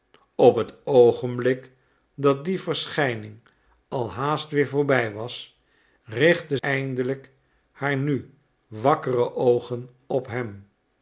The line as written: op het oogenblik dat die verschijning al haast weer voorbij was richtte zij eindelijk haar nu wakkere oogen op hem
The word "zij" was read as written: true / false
false